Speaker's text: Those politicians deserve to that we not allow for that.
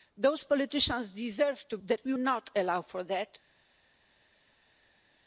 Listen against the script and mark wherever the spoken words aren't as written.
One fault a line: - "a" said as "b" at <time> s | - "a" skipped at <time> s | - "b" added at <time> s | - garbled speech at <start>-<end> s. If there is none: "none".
none